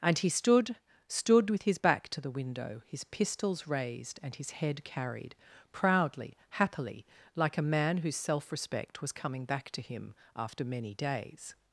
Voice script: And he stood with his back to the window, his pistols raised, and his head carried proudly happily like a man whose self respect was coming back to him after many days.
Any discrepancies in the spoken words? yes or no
yes